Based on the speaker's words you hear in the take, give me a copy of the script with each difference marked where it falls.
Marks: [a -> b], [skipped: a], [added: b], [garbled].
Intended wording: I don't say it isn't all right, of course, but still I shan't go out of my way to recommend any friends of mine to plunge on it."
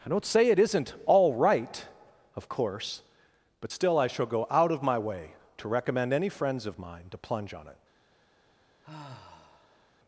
I don't say it isn't all right, of course, but still I [shan't -> shall] go out of my way to recommend any friends of mine to plunge on it."